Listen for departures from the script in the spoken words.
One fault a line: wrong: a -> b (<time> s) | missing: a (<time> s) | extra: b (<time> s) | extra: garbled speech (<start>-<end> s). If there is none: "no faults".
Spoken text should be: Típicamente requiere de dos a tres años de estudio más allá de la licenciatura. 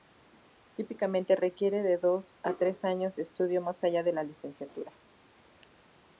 no faults